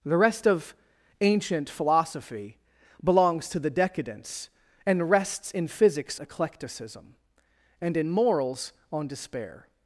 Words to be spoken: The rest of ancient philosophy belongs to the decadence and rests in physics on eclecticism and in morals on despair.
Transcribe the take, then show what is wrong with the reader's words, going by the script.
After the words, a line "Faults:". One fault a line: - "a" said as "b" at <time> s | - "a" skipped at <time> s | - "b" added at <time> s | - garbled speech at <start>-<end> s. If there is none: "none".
The rest of ancient philosophy belongs to the decadence and rests in physics eclecticism and in morals on despair.
Faults:
- "on" skipped at 6.2 s